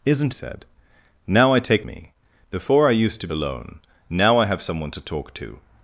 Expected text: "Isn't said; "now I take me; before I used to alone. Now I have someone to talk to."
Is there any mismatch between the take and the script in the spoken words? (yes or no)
no